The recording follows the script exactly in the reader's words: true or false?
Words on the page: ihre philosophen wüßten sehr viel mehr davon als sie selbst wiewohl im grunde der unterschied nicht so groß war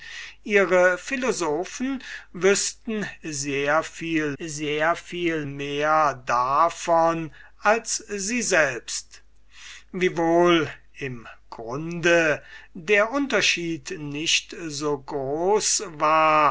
false